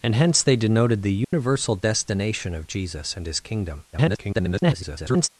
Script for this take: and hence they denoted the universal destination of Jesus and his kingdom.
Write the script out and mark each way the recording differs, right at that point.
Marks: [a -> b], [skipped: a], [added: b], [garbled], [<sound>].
and hence they denoted the universal [dropout] destination of Jesus and his kingdom. [garbled]